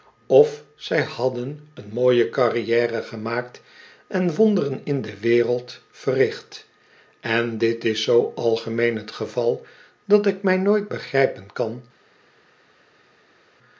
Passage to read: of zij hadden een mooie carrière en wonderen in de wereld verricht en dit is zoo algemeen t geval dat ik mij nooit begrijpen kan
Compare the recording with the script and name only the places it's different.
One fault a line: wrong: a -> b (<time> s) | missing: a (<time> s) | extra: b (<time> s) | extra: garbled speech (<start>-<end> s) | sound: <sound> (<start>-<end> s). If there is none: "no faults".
extra: gemaakt (3.0 s)